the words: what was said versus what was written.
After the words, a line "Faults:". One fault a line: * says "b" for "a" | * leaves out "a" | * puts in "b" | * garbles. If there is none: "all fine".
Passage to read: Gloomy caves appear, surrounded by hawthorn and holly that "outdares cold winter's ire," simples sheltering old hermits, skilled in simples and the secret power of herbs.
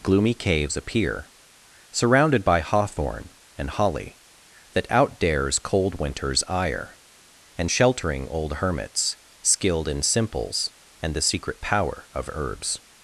Gloomy caves appear, surrounded by hawthorn and holly that "outdares cold winter's ire," and sheltering old hermits, skilled in simples and the secret power of herbs.
Faults:
* says "and" for "simples"